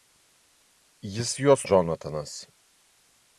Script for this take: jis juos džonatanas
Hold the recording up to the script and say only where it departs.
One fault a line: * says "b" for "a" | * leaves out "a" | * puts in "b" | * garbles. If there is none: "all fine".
all fine